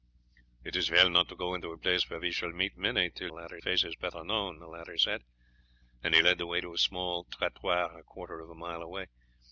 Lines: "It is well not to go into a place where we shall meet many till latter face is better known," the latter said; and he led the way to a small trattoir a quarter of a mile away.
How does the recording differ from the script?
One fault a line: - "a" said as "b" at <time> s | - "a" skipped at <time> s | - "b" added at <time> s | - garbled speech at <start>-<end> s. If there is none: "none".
none